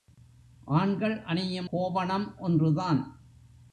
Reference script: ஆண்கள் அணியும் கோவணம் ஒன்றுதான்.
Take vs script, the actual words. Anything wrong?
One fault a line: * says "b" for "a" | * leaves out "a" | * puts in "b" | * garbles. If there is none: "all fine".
all fine